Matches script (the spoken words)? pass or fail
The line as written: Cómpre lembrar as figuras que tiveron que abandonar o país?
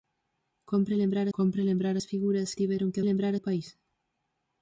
fail